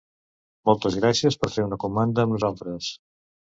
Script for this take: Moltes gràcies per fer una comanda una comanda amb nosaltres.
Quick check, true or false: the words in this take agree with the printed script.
false